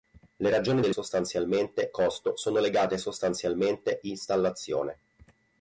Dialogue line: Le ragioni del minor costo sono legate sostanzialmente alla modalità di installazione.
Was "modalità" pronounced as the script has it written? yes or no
no